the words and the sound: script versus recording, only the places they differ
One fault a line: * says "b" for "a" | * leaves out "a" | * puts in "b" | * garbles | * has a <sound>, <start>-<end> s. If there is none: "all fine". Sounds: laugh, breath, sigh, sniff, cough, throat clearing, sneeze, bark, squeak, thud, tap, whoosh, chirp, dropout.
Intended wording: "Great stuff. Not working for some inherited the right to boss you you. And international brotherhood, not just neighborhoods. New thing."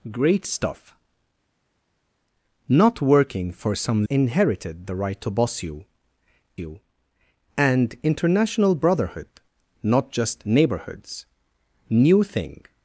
all fine